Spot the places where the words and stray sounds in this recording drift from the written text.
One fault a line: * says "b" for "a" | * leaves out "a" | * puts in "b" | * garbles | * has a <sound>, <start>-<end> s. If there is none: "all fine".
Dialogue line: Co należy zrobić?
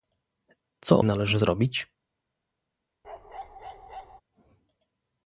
* has a bark, 3.0-4.2 s